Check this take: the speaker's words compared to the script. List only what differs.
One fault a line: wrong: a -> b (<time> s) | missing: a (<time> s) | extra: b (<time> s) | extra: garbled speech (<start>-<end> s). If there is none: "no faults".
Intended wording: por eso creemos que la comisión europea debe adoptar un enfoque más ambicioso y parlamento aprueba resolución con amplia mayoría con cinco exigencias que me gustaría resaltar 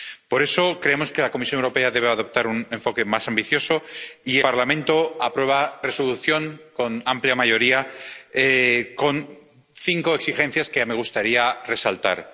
no faults